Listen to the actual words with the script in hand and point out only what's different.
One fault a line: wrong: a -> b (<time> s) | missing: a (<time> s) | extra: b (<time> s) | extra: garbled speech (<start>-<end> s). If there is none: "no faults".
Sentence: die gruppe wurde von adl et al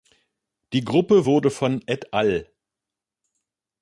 missing: adl (1.8 s)